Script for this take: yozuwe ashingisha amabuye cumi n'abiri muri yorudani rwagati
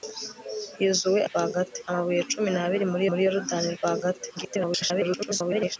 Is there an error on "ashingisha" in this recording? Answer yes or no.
yes